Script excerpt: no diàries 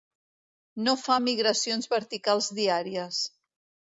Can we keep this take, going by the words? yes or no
no